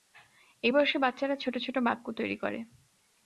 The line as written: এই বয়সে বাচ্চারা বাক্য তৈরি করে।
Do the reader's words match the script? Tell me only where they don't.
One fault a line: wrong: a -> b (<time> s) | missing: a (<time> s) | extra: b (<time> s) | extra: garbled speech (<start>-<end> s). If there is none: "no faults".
extra: ছোট ছোট (1.4 s)